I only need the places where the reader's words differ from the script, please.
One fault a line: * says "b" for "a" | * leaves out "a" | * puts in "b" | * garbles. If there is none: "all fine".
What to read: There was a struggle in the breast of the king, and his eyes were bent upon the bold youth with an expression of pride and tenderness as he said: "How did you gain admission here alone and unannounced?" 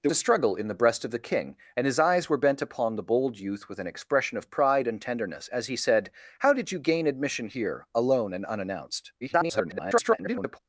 * leaves out "was"
* garbles